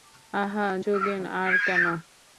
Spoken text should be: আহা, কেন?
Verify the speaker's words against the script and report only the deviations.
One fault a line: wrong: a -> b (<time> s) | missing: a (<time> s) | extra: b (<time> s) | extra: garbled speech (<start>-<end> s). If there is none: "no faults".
extra: যোগেন আর (0.8 s)